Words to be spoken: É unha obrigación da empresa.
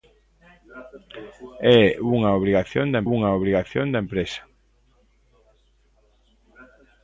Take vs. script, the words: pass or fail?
fail